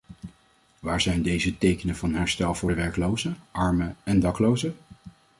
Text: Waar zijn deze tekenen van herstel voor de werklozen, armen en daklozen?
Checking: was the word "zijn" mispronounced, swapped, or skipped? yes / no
no